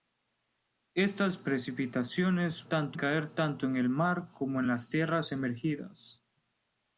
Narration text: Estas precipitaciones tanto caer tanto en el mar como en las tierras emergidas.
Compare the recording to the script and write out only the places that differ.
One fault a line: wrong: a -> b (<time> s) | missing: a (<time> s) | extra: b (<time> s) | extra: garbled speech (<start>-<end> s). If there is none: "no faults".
no faults